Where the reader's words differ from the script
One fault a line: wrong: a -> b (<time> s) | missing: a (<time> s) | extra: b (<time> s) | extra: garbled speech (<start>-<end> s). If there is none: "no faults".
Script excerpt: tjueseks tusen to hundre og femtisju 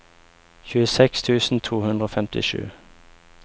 no faults